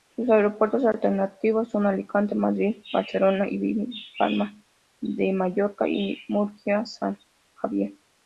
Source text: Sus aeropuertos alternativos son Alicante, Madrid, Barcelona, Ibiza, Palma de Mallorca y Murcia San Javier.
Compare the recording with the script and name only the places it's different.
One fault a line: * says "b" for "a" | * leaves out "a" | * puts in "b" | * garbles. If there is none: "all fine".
all fine